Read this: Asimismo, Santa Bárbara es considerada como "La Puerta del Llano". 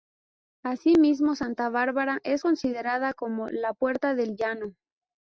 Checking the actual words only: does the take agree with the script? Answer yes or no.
yes